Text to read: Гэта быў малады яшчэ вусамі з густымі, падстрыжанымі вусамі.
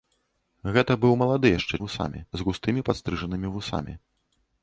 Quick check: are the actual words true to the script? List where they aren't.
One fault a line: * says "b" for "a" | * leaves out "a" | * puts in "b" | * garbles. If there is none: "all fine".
all fine